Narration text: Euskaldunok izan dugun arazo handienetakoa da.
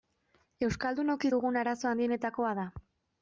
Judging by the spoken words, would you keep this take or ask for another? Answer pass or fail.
fail